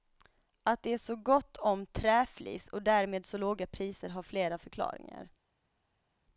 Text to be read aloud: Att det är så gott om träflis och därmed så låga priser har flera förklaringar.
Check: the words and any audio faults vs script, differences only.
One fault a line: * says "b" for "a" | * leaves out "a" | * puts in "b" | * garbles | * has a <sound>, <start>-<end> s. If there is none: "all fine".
all fine